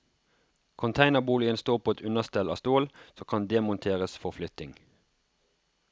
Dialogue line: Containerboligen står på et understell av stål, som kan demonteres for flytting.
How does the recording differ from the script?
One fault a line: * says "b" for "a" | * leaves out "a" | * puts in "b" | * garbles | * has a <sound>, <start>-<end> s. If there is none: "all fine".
all fine